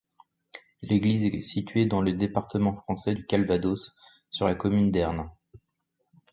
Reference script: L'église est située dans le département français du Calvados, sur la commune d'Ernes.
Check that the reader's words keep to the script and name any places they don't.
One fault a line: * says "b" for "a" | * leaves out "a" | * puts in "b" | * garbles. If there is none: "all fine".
all fine